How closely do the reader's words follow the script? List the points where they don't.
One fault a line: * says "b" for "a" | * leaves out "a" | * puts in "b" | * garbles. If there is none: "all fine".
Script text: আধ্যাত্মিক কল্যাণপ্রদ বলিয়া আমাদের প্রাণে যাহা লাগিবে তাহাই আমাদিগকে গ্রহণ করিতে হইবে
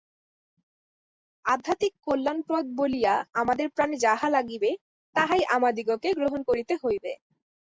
all fine